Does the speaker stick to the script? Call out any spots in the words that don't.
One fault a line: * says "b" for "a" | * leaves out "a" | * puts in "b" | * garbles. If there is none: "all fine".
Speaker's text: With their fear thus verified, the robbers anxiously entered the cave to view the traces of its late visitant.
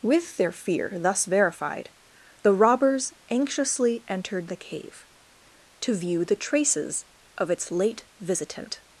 all fine